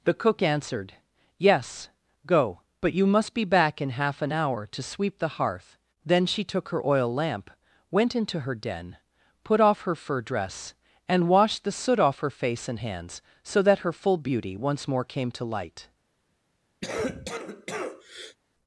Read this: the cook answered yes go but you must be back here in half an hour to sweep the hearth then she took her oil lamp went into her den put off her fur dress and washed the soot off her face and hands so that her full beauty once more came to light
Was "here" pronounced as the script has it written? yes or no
no